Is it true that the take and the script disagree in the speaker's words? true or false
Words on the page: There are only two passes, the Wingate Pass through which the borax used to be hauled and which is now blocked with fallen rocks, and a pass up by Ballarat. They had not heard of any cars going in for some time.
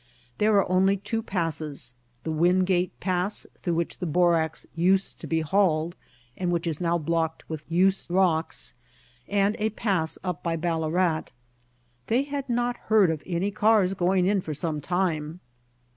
true